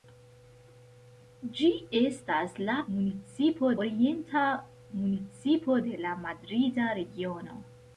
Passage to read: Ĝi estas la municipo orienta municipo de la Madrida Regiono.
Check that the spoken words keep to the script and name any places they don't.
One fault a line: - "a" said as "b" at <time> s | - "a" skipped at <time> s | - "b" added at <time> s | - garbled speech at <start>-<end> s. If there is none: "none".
none